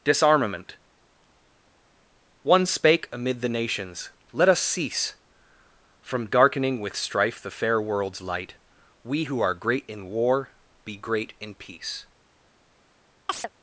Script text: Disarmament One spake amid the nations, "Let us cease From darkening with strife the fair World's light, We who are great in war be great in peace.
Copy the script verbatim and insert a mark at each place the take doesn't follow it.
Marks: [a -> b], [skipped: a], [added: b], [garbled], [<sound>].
Disarmament One spake amid the nations, "Let us cease From darkening with strife the fair World's light, We who are great in war be great in peace. [chirp]